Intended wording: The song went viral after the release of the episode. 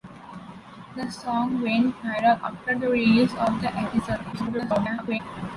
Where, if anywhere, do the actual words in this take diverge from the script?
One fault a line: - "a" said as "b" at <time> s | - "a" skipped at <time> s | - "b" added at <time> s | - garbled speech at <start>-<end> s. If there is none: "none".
- garbled speech at 4.3-5.2 s